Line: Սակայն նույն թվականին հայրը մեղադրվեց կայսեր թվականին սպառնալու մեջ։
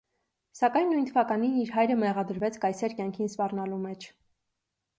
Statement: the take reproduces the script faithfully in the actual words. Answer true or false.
false